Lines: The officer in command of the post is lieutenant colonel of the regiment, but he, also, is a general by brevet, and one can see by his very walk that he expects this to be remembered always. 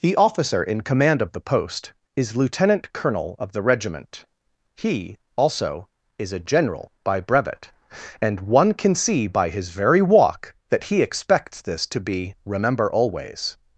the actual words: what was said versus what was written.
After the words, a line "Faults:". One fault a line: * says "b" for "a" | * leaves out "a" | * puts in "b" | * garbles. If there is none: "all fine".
The officer in command of the post is lieutenant colonel of the regiment, he, also, is a general by brevet, and one can see by his very walk that he expects this to be remember always.
Faults:
* leaves out "but"
* says "remember" for "remembered"